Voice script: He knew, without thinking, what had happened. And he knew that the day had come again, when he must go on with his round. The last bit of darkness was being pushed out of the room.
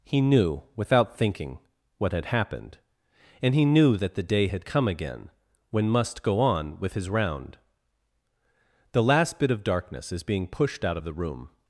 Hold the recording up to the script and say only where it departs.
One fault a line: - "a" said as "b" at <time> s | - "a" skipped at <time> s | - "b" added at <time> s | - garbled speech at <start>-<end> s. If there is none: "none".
- "he" skipped at 5.9 s
- "was" said as "is" at 10.1 s